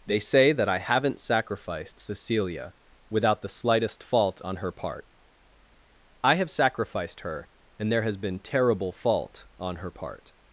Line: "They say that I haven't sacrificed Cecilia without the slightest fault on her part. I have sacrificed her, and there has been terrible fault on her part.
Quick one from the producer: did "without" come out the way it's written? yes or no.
yes